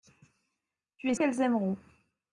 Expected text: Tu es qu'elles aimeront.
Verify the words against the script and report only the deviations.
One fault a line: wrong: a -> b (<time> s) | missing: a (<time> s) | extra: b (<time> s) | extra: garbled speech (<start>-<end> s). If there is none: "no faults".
no faults